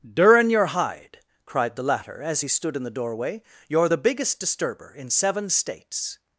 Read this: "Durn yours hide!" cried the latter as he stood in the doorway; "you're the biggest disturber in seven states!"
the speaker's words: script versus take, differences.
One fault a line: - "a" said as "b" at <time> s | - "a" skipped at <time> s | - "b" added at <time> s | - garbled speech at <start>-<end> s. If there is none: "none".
- "yours" said as "your" at 0.5 s